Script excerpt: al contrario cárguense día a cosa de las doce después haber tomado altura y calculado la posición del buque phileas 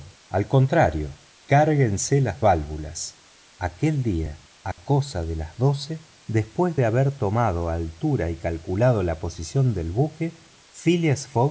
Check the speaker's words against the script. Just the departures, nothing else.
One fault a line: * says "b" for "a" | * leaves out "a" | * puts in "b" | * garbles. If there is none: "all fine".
* puts in "las válvulas aquel"
* puts in "de"